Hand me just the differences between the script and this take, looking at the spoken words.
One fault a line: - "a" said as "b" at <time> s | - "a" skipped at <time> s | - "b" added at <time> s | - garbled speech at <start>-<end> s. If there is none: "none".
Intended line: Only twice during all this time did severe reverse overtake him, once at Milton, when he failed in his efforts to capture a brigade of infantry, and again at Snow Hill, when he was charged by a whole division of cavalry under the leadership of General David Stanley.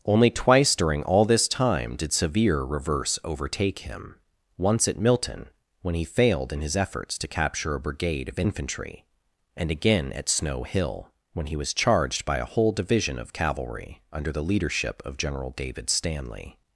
none